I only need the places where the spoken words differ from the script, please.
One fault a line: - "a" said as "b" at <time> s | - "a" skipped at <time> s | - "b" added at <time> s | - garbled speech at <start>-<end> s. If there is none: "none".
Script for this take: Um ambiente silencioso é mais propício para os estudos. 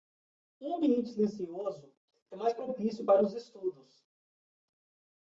none